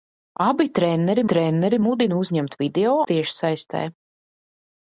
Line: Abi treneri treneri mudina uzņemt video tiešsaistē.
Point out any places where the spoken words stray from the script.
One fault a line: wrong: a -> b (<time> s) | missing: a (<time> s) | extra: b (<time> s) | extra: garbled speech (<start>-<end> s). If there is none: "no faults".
no faults